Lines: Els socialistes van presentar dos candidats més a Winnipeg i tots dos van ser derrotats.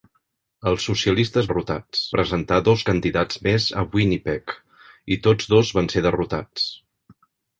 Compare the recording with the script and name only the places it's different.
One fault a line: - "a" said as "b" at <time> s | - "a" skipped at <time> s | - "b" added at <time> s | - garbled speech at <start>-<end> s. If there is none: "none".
- "van" said as "derrotats" at 1.5 s